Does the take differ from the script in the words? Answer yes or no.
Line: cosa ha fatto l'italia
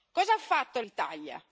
no